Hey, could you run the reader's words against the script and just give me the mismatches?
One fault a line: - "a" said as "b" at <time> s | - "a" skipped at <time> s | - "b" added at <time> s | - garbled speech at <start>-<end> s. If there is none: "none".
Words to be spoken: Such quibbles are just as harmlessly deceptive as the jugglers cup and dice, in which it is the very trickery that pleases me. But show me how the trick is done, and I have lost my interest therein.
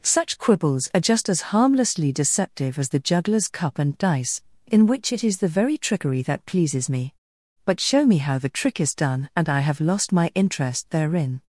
none